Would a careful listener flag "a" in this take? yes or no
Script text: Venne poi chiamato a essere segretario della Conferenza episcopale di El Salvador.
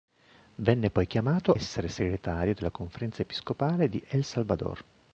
yes